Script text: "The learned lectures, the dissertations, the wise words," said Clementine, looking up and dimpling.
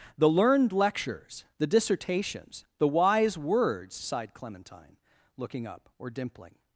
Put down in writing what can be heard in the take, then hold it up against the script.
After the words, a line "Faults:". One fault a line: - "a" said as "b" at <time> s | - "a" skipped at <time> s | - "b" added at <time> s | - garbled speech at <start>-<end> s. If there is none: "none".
"The learned lectures, the dissertations, the wise words," sighed Clementine, looking up or dimpling.
Faults:
- "said" said as "sighed" at 3.9 s
- "and" said as "or" at 6.0 s